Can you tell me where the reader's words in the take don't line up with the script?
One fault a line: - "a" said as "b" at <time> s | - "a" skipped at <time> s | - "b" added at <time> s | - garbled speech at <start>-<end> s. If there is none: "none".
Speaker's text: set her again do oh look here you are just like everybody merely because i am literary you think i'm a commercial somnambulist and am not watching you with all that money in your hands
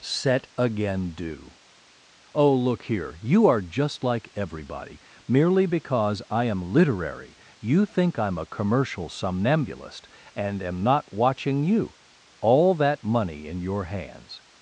- "her" skipped at 0.5 s
- "with" skipped at 12.0 s